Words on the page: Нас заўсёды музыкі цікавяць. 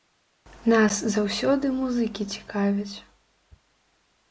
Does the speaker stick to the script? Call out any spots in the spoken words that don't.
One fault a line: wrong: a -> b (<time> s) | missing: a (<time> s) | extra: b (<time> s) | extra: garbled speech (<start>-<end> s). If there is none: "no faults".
no faults